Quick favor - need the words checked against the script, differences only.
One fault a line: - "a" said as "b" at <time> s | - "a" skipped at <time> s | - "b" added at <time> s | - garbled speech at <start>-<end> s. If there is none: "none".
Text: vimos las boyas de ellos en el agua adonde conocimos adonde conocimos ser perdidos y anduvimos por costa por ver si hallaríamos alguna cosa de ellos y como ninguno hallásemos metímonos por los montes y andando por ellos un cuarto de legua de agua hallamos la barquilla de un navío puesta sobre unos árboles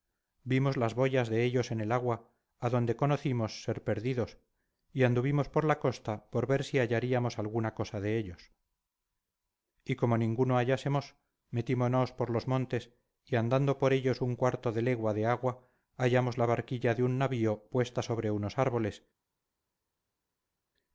- "adonde conocimos" skipped at 3.6 s
- "la" added at 5.6 s